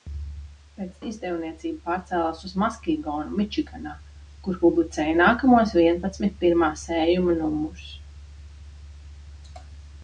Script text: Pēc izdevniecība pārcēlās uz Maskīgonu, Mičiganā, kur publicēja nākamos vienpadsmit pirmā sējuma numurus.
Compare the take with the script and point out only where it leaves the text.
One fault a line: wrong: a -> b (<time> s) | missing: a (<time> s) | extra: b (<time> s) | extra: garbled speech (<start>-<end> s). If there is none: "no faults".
no faults